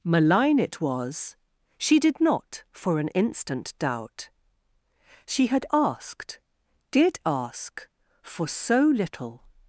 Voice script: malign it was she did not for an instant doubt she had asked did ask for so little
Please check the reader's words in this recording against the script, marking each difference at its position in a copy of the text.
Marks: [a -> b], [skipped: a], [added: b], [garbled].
malign it was she did not for an instant doubt she had asked did ask for so little